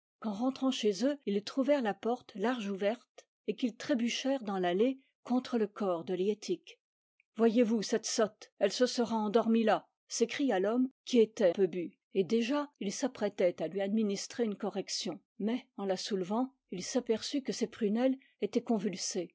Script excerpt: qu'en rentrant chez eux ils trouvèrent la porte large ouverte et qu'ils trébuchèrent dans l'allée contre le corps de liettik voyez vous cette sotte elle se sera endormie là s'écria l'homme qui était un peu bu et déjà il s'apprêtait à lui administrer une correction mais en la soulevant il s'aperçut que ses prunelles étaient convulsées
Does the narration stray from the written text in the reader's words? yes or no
yes